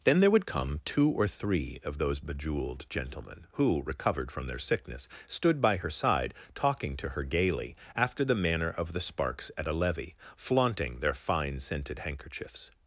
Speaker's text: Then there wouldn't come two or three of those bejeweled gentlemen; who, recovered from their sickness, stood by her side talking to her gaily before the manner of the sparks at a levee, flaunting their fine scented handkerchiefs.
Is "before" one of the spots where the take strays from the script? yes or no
yes